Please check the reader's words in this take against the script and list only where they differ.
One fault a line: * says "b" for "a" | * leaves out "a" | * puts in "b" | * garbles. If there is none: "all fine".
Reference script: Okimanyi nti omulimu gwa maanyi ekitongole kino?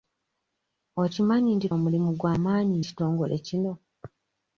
all fine